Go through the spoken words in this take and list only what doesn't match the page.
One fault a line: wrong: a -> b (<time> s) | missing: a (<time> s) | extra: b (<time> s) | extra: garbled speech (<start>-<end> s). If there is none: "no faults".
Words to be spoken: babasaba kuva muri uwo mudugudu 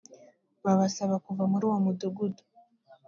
no faults